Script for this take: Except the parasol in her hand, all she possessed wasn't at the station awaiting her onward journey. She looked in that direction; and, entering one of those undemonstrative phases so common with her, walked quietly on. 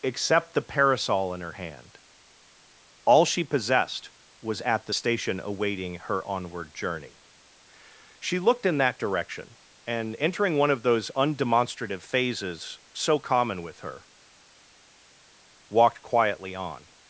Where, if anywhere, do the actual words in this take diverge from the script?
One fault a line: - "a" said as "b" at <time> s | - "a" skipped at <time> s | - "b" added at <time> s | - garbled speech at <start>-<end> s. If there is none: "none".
- "wasn't" said as "was" at 4.4 s